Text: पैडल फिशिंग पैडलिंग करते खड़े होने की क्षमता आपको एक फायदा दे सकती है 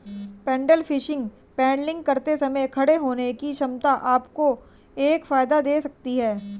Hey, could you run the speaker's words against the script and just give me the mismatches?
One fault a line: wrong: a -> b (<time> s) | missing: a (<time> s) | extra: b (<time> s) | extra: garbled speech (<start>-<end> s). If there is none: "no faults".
extra: समय (2.4 s)